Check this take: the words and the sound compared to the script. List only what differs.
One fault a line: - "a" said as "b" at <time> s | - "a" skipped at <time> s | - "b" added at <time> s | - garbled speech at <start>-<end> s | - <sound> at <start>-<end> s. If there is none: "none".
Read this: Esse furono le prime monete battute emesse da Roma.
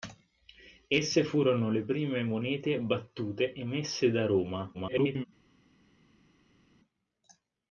- garbled speech at 4.7-5.3 s